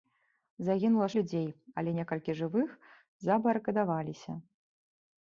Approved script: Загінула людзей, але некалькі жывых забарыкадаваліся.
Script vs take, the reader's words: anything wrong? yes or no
no